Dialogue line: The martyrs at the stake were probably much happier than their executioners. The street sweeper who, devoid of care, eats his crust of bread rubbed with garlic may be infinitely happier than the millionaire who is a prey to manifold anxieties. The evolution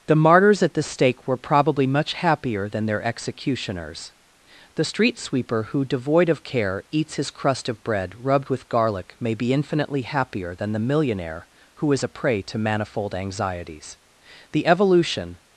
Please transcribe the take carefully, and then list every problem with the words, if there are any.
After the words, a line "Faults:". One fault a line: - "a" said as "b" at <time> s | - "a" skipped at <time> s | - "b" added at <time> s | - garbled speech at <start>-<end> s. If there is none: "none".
The martyrs at the stake were probably much happier than their executioners. The street sweeper who, devoid of care, eats his crust of bread rubbed with garlic may be infinitely happier than the millionaire who is a prey to manifold anxieties. The evolution
Faults:
none